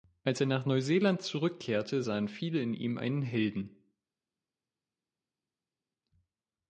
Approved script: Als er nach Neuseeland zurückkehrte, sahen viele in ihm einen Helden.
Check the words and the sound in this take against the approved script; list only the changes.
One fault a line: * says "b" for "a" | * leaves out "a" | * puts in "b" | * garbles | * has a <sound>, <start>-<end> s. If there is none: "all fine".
all fine